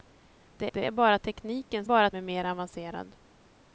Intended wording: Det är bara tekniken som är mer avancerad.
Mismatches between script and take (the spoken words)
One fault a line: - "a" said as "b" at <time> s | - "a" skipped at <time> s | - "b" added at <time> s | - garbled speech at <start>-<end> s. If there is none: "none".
- "det" added at 0.7 s
- "som" said as "bara" at 1.8 s